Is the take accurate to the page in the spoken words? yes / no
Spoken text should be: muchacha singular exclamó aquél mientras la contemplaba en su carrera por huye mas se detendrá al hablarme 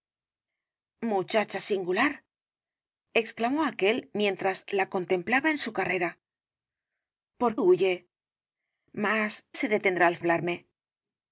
yes